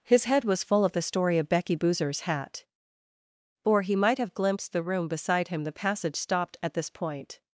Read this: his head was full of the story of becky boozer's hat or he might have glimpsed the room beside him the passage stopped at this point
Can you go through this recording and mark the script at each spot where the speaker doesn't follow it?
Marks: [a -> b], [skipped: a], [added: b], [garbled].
his head was full of the story of becky boozer's hat or he might have glimpsed the room beside him the passage stopped at this point